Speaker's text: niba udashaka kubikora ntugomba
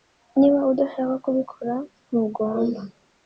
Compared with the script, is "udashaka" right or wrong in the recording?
right